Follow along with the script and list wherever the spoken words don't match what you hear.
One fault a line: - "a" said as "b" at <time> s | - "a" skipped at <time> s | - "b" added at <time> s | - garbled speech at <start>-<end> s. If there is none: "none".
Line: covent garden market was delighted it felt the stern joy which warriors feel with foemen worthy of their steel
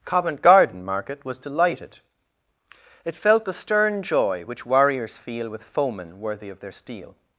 none